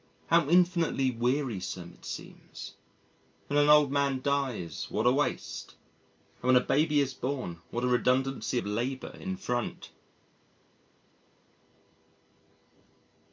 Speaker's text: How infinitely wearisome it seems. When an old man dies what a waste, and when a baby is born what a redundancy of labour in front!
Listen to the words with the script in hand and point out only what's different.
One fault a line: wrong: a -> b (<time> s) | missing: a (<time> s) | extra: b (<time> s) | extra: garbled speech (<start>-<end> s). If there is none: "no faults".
no faults